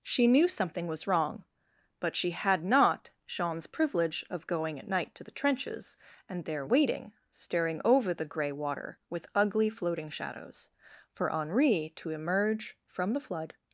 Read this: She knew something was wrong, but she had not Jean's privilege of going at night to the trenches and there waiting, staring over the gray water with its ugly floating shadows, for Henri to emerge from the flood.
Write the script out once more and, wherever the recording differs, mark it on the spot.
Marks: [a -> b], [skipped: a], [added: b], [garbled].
She knew something was wrong, but she had not Jean's privilege of going at night to the trenches and there waiting, staring over the gray water with [skipped: its] ugly floating shadows, for Henri to emerge from the flood.